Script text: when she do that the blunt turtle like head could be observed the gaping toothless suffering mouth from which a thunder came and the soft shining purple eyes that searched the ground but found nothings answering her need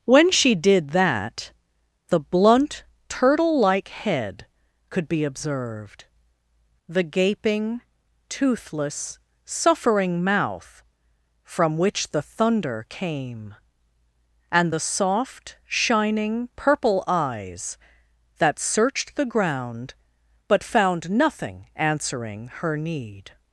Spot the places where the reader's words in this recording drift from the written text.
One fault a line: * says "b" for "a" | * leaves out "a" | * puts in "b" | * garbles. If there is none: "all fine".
* says "did" for "do"
* says "the" for "a"
* says "nothing" for "nothings"